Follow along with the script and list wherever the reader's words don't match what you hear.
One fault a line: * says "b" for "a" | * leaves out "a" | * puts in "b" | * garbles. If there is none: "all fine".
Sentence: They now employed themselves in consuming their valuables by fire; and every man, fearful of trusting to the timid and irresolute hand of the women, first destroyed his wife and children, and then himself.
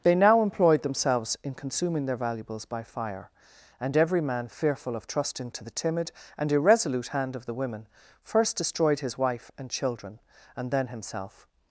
all fine